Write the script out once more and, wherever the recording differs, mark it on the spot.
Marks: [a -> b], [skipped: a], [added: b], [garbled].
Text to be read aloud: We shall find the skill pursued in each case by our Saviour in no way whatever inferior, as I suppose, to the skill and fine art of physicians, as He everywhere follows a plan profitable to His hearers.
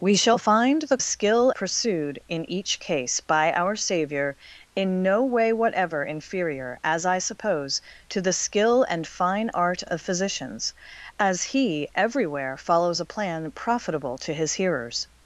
We shall find the skill pursued in each case by our Saviour in no way whatever inferior, as I suppose, to the skill and fine art of physicians, as He everywhere follows a plan profitable to His hearers.